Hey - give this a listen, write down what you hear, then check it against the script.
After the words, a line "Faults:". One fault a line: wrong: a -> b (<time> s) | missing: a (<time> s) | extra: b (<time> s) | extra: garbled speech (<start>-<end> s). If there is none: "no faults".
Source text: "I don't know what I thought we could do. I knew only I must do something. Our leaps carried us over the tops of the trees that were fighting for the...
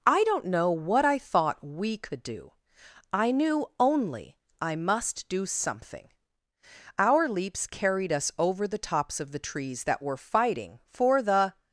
"I don't know what I thought we could do. I knew only I must do something. Our leaps carried us over the tops of the trees that were fighting for the...
Faults:
no faults